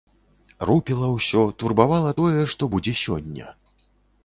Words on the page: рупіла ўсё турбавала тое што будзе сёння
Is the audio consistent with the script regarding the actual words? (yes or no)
yes